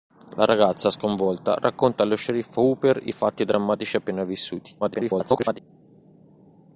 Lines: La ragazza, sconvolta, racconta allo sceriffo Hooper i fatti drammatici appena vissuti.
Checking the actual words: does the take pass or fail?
fail